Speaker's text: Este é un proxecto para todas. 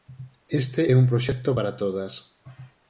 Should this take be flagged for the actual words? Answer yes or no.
no